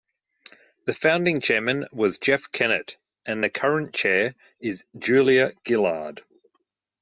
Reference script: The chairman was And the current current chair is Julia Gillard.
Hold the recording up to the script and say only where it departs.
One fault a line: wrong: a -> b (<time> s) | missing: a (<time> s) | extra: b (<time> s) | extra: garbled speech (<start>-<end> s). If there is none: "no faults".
extra: founding (0.9 s)
extra: Jeff Kennett (2.2 s)
missing: current (3.9 s)